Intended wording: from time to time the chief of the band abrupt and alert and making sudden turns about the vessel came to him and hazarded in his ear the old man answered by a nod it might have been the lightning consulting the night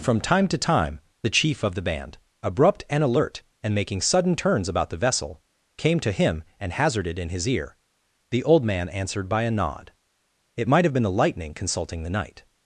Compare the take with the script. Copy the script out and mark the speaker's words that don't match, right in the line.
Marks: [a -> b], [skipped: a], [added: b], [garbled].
from time to time the chief of the band abrupt and alert and making sudden turns about the vessel came to him and hazarded in his ear the old man answered by a nod it might have been the lightning consulting the night